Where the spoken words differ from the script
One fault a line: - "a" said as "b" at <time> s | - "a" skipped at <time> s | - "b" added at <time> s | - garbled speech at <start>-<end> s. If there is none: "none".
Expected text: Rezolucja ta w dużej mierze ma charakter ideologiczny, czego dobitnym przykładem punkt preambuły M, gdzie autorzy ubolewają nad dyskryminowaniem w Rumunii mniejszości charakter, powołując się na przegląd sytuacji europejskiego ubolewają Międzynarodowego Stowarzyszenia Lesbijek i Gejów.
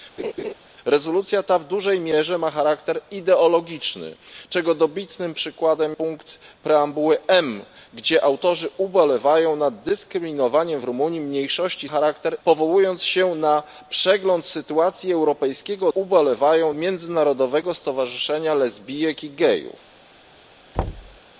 none